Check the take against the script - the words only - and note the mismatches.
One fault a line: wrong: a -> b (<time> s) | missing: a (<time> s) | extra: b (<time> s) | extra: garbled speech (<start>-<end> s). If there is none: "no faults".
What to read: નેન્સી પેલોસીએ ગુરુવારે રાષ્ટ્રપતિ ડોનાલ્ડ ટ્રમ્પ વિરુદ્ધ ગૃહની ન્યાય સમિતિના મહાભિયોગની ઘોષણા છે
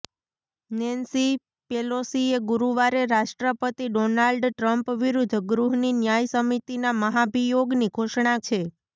no faults